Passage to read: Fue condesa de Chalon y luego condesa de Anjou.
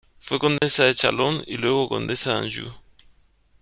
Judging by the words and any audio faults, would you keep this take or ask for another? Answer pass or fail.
fail